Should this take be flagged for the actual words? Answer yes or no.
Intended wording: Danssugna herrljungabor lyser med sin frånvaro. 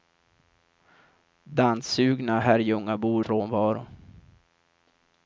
yes